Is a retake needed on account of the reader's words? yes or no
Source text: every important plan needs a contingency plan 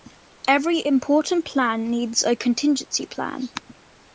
no